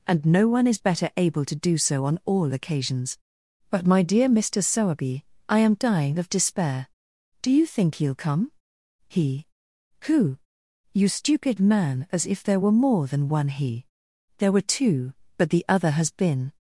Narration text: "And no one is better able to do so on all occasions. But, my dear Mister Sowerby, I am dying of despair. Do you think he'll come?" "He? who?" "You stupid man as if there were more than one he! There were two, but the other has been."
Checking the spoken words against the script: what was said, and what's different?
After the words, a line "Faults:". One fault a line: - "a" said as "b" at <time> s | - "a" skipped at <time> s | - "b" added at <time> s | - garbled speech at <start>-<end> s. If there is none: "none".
"And no one is better able to do so on all occasions. But, my dear Mister Sowerby, I am dying of despair. Do you think he'll come?" "He? who?" "You stupid man as if there were more than one he! There were two, but the other has been."
Faults:
none